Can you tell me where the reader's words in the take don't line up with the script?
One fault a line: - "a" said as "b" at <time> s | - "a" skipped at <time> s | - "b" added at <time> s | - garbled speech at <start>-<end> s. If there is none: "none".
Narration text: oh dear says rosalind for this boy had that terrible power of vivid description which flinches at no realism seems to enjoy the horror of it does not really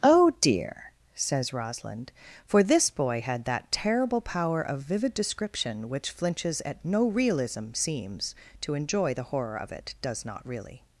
none